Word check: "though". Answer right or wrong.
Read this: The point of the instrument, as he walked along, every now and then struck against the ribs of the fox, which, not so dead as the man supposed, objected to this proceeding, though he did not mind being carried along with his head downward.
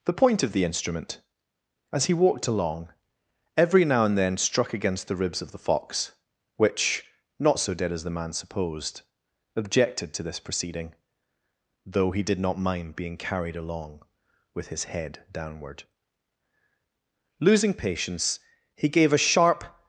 right